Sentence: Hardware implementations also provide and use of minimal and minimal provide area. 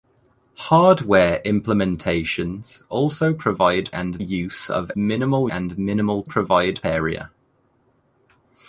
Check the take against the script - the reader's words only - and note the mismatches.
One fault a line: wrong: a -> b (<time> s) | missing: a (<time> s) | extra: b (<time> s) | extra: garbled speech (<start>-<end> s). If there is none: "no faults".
no faults